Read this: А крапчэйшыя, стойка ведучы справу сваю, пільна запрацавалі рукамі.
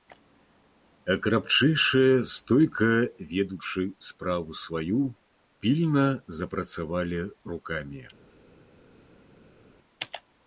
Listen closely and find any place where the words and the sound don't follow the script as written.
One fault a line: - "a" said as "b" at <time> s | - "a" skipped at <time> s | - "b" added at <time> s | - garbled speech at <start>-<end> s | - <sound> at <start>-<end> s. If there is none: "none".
none